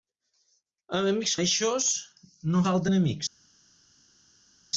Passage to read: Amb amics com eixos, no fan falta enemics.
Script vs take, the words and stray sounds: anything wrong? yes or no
yes